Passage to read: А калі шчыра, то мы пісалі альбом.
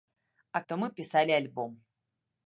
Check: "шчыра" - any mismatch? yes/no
yes